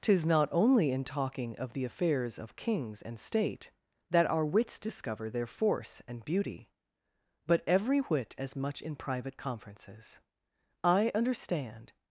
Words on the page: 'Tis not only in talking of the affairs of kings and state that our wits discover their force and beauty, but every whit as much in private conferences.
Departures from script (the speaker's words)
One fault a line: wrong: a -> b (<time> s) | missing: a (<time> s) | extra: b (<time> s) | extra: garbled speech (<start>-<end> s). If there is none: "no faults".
extra: I understand (10.8 s)